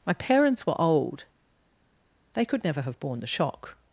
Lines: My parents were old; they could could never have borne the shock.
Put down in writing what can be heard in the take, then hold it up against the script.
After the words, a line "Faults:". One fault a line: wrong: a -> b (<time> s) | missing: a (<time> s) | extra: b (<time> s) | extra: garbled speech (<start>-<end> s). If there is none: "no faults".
My parents were old; they could never have borne the shock.
Faults:
missing: could (2.6 s)